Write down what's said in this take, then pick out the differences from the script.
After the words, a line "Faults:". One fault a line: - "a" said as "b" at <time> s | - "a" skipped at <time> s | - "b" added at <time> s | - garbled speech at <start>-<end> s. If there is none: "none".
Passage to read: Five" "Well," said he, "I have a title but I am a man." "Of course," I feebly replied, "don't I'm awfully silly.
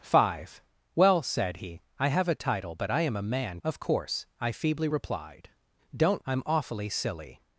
Five" "Well," said he, "I have a title but I am a man." "Of course," I feebly replied, "don't I'm awfully silly.
Faults:
none